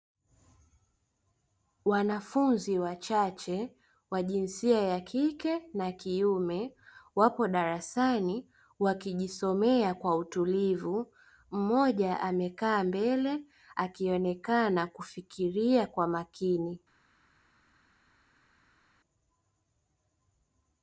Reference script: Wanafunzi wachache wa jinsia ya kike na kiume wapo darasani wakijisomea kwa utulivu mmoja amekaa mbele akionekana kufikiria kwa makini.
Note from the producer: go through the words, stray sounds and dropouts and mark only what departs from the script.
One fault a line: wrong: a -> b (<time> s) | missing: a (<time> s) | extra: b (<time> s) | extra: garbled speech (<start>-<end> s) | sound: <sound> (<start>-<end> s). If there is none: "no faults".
no faults